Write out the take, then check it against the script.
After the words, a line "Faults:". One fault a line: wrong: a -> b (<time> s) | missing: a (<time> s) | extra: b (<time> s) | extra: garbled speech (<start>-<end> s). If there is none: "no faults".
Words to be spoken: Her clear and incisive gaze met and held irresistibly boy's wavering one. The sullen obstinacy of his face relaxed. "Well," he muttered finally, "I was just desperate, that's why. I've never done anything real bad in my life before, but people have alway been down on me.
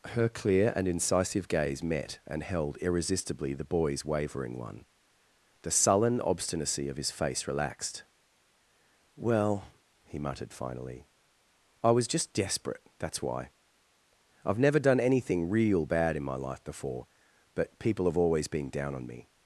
Her clear and incisive gaze met and held irresistibly the boy's wavering one. The sullen obstinacy of his face relaxed. "Well," he muttered finally, "I was just desperate, that's why. I've never done anything real bad in my life before, but people have always been down on me.
Faults:
extra: the (3.5 s)
wrong: alway -> always (18.2 s)